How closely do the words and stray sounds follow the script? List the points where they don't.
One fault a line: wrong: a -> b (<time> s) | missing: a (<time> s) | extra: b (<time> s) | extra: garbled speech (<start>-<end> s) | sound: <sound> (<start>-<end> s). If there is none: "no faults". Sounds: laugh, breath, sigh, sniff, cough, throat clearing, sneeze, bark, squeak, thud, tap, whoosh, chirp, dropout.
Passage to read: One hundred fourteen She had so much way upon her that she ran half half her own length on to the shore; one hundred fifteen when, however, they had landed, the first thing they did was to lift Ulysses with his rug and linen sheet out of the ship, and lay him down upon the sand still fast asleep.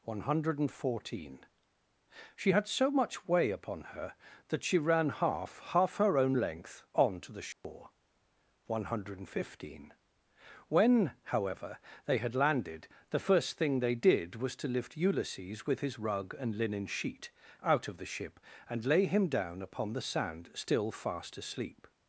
sound: dropout (7.5-7.6 s)